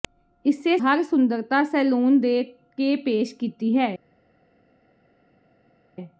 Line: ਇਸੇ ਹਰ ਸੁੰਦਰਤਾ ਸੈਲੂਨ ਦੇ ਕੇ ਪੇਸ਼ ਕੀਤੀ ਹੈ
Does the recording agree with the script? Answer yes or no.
yes